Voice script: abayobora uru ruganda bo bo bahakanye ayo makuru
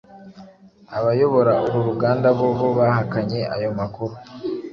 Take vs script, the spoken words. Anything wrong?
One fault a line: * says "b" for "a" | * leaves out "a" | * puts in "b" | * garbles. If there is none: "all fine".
all fine